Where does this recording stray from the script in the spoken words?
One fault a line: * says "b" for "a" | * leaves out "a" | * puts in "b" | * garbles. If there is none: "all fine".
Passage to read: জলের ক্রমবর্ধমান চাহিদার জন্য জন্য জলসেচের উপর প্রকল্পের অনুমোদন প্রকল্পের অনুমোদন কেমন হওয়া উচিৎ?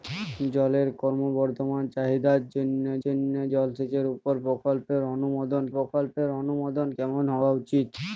all fine